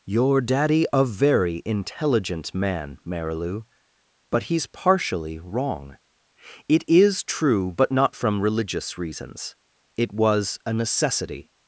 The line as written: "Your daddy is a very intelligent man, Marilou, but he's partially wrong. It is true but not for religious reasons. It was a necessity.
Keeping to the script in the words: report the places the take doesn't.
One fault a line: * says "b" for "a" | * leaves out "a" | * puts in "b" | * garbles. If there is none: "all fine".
* leaves out "is"
* says "from" for "for"